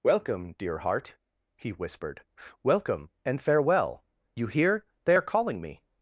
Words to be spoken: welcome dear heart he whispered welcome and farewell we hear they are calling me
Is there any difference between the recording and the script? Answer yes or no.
yes